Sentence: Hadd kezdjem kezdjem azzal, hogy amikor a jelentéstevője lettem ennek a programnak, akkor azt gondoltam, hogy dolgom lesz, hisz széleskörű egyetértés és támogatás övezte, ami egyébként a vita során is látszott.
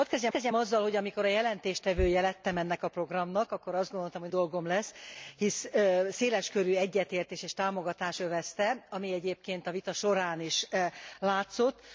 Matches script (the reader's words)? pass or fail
pass